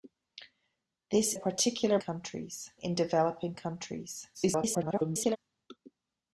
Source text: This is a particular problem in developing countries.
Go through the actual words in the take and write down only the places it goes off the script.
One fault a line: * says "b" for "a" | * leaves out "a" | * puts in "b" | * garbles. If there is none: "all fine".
* leaves out "is"
* says "countries" for "problem"
* garbles